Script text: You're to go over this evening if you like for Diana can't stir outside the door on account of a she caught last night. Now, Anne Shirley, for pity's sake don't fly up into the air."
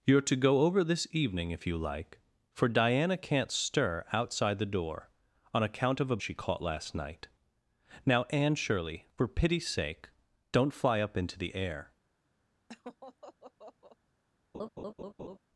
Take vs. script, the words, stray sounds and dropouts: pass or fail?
fail